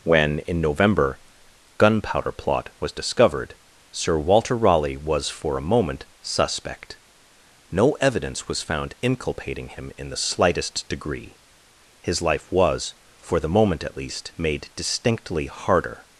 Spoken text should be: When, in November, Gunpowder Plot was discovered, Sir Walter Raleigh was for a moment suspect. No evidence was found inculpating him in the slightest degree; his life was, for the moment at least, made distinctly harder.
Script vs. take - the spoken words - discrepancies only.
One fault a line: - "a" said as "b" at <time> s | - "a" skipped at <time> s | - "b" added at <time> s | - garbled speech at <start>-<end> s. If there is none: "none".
none